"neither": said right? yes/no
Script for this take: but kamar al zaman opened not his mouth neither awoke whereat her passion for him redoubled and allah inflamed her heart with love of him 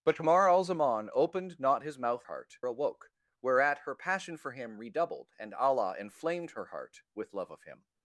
no